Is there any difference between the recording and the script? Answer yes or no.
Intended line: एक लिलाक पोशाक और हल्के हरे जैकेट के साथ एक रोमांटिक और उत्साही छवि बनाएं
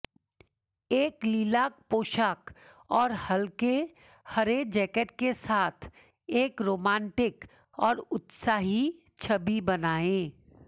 no